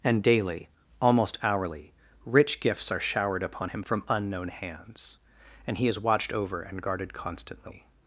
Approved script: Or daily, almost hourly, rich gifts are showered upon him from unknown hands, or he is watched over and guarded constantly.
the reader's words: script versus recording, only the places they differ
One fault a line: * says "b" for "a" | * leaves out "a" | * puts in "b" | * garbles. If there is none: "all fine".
* says "And" for "Or"
* says "and" for "or"